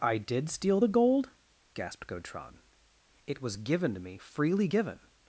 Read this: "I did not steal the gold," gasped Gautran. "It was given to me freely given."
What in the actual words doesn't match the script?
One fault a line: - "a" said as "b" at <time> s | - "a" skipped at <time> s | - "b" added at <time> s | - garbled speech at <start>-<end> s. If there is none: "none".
- "not" skipped at 0.5 s